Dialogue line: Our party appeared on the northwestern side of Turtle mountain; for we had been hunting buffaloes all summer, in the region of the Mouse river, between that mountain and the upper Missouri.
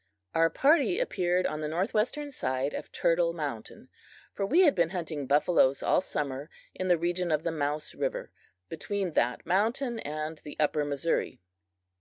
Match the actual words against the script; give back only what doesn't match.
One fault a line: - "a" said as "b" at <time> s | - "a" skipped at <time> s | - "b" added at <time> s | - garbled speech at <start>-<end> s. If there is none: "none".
none